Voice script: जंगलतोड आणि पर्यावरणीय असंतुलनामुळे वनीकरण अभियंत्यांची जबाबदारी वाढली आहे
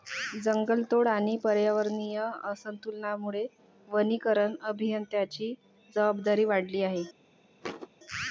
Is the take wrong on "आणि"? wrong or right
right